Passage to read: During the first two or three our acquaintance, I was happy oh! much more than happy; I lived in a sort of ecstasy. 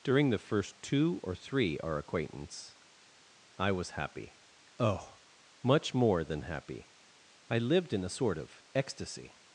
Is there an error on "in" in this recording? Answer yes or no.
no